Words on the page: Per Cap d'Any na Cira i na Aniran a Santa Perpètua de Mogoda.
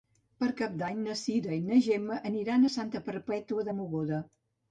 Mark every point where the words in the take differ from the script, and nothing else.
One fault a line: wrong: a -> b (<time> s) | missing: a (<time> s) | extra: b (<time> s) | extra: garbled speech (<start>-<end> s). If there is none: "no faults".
extra: Gemma (1.9 s)